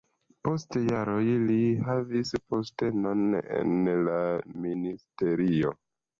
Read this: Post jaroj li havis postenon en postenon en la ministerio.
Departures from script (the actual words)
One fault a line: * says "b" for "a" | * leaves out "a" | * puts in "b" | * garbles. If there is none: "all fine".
* leaves out "postenon en"